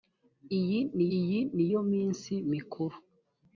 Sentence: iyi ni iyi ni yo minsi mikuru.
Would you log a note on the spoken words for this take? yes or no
no